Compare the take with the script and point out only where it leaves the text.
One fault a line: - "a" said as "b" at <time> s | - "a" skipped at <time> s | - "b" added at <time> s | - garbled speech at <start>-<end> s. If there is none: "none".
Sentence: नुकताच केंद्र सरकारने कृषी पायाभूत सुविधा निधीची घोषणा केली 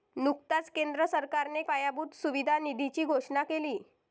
- "कृषी" skipped at 1.6 s